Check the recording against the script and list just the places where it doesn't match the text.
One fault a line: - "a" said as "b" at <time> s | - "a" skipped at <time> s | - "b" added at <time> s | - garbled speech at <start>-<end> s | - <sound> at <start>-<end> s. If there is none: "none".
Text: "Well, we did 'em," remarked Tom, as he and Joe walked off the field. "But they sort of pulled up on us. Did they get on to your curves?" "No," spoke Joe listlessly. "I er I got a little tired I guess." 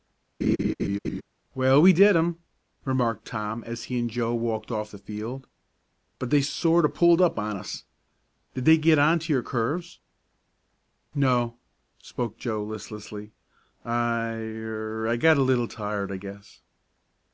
- laugh at 0.4-1.2 s